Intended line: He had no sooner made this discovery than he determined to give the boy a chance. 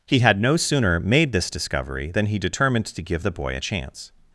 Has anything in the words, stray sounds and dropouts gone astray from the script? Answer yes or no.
no